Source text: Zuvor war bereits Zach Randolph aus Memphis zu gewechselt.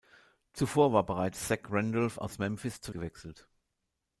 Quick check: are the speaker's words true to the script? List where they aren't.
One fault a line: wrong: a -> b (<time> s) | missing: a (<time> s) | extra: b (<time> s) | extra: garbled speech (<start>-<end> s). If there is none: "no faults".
no faults